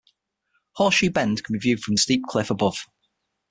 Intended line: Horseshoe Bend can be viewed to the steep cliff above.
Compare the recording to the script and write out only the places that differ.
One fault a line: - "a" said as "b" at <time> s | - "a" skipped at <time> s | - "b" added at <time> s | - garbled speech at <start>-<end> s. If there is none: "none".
- "to" said as "from" at 1.8 s